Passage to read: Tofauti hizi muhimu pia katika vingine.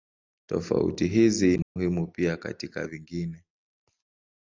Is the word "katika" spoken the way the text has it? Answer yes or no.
yes